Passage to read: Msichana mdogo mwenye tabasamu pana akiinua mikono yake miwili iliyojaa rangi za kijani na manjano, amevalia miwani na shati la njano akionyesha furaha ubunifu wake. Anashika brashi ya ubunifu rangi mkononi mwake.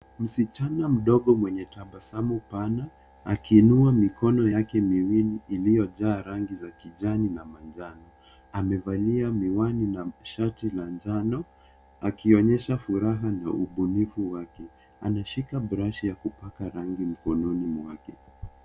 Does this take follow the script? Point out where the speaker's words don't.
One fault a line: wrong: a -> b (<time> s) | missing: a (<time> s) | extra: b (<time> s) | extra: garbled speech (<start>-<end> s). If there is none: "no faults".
extra: na (13.3 s)
wrong: ubunifu -> kupaka (16.1 s)